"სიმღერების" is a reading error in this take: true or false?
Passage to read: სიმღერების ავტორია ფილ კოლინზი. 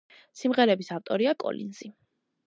false